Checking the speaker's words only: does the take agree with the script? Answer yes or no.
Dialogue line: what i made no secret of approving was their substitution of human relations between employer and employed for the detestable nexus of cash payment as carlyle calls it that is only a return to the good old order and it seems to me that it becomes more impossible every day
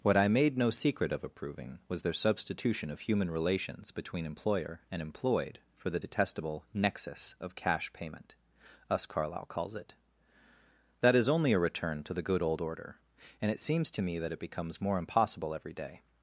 no